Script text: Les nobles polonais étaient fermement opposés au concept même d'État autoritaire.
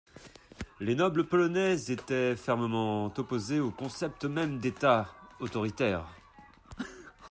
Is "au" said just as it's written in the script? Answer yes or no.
yes